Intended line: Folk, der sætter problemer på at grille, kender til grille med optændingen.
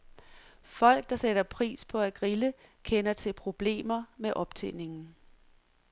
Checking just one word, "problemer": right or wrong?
wrong